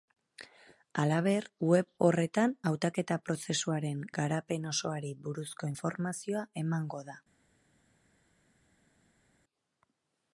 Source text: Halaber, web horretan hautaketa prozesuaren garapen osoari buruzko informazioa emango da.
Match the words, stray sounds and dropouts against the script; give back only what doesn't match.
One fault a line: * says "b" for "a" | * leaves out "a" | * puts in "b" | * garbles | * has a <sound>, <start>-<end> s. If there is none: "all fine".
all fine